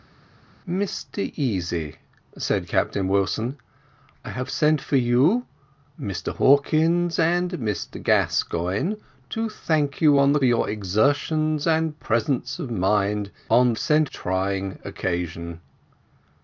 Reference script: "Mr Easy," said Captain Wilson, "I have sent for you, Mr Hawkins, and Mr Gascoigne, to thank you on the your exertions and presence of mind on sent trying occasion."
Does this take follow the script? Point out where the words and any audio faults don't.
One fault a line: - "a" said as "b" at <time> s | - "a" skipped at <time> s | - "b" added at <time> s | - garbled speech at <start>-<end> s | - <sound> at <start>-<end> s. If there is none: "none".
none